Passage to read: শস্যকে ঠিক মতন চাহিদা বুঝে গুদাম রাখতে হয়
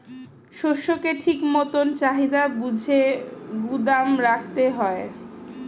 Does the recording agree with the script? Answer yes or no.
yes